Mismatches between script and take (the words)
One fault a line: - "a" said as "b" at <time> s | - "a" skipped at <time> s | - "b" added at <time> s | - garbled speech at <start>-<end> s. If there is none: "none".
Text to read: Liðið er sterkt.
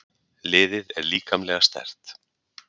- "líkamlega" added at 1.1 s